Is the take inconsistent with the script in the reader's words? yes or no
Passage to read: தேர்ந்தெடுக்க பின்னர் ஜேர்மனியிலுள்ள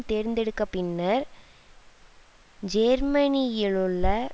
no